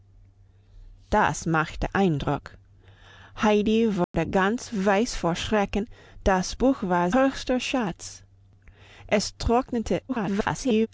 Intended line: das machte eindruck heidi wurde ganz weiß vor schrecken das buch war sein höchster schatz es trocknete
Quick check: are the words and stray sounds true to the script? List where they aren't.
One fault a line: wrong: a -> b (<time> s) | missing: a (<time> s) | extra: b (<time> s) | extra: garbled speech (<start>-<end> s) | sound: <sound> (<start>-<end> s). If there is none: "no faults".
sound: dropout (4.0-4.1 s)
missing: sein (7.1 s)
extra: garbled speech (10.1-10.9 s)